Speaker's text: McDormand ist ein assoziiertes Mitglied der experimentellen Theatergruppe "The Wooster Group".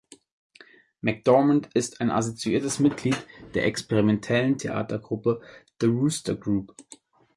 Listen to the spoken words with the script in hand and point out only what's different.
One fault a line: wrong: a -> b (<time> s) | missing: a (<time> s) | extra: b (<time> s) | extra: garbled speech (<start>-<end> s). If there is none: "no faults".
no faults